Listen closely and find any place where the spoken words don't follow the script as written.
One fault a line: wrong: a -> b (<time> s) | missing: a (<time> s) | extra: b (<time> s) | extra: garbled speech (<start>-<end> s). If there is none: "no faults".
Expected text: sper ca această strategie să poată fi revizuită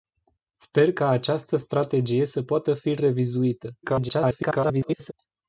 extra: garbled speech (3.8-5.1 s)